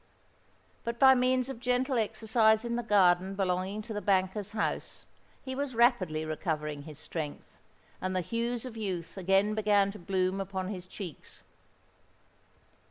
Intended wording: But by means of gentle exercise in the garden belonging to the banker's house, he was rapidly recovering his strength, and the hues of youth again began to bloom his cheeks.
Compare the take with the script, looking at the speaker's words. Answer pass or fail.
fail